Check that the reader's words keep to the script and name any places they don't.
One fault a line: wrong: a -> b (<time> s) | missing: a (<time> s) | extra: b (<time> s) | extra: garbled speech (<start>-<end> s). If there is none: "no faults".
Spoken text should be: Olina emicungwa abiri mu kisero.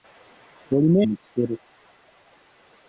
missing: emicungwa abiri (1.0 s)